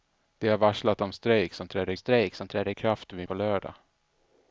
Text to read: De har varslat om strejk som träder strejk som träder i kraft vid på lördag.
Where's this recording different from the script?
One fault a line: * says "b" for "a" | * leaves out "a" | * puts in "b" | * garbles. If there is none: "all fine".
all fine